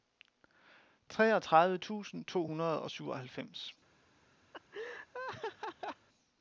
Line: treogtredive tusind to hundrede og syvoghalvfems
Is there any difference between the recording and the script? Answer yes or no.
no